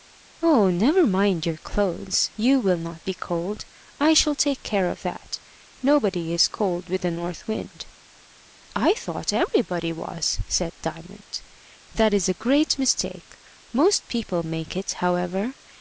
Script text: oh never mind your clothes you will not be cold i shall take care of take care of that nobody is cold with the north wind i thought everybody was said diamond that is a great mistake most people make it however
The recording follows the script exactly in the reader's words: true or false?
false